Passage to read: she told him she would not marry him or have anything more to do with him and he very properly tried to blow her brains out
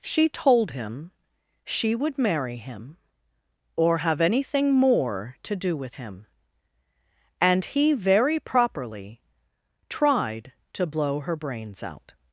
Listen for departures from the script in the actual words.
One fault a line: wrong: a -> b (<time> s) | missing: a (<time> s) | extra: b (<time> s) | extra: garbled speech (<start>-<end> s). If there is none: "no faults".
missing: not (2.2 s)